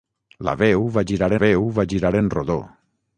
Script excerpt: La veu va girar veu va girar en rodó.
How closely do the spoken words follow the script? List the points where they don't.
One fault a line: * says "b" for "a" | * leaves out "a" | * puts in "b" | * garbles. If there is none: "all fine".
all fine